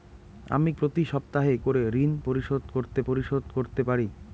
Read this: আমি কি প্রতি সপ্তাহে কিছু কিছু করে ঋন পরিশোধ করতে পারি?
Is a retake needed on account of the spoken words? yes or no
yes